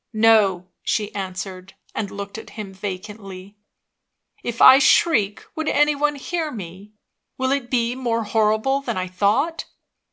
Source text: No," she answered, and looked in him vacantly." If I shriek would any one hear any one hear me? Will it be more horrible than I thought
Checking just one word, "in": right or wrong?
wrong